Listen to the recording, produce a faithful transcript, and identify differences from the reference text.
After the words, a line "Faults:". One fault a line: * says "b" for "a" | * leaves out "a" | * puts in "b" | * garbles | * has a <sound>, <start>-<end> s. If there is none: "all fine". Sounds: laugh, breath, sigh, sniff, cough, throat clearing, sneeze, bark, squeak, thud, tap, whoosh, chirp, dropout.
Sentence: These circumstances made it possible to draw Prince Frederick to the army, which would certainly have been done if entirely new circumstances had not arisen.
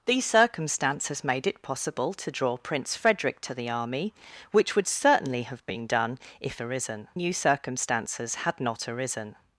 These circumstances made it possible to draw Prince Frederick to the army, which would certainly have been done if arisen new circumstances had not arisen.
Faults:
* says "arisen" for "entirely"